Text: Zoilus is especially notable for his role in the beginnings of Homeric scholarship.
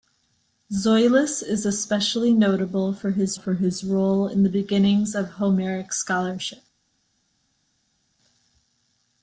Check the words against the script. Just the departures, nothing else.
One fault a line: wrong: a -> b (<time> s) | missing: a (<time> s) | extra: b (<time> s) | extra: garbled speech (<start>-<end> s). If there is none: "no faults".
extra: for his (3.3 s)